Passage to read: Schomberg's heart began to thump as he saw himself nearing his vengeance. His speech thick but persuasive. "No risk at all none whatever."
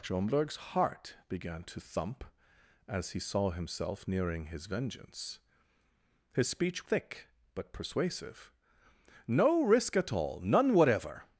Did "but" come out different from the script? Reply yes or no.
no